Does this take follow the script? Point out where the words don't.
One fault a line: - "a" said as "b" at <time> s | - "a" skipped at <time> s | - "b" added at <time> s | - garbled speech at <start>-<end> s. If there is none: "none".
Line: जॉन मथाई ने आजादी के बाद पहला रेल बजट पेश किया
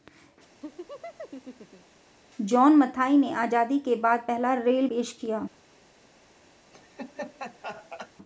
- "बजट" skipped at 4.9 s